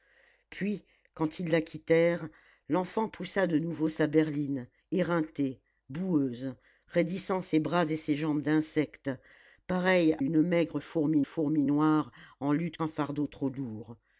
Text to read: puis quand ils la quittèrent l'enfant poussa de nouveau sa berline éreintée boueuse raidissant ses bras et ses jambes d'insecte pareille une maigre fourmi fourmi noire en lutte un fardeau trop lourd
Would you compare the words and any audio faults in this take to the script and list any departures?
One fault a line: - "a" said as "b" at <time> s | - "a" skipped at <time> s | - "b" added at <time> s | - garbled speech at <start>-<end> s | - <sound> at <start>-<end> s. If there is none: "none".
none